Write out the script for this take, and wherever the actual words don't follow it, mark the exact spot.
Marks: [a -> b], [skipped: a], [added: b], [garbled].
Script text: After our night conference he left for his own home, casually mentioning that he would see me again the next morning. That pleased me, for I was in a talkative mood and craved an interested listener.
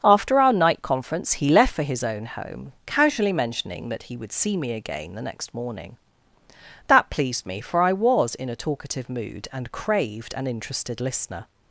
After our night conference he left for his own home, casually mentioning that he would see me again the next morning. That pleased me, for I was in a talkative mood and craved an interested listener.